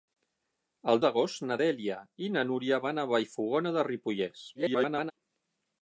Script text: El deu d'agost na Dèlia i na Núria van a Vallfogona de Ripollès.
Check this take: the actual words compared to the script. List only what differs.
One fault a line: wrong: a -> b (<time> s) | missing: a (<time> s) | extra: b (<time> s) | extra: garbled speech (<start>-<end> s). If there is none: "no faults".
missing: deu (1.0 s)
extra: garbled speech (4.5-5.1 s)